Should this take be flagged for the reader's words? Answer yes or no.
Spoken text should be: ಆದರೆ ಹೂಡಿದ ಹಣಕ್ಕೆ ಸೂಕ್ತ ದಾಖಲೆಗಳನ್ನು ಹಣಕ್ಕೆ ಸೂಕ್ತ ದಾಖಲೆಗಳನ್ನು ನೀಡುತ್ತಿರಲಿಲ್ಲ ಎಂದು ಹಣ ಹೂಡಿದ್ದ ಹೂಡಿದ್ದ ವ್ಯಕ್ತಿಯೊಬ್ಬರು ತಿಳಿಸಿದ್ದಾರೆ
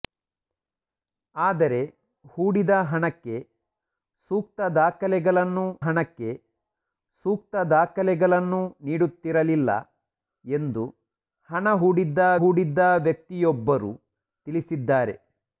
no